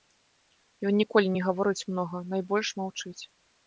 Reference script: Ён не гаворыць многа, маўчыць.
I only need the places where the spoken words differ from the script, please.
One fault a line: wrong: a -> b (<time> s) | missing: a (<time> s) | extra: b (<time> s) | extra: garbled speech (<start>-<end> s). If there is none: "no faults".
extra: ніколі (1.0 s)
extra: найбольш (2.3 s)